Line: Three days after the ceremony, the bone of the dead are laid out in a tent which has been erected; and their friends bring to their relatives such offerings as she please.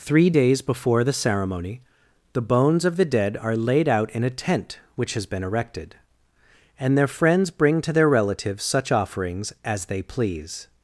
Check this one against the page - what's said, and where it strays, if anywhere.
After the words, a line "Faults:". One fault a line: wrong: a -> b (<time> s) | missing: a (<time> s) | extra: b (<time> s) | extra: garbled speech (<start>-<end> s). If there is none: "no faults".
Three days before the ceremony, the bones of the dead are laid out in a tent which has been erected; and their friends bring to their relatives such offerings as they please.
Faults:
wrong: after -> before (0.6 s)
wrong: bone -> bones (2.4 s)
wrong: she -> they (9.9 s)